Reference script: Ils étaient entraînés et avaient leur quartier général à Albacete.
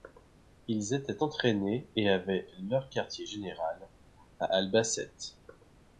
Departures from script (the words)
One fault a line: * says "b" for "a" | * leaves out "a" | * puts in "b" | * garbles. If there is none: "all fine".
all fine